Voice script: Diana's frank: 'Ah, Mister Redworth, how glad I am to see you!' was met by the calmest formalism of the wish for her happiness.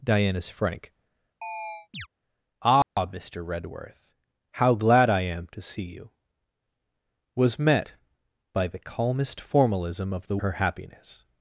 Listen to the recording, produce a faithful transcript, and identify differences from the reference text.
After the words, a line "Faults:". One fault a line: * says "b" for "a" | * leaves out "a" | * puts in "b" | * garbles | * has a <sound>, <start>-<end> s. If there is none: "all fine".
Diana's frank: 'Ah, Mister Redworth, how glad I am to see you!' was met by the calmest formalism of the her happiness.
Faults:
* has a chirp, 1.4-2.1 s
* has a dropout, 2.8-3.0 s
* leaves out "wish for"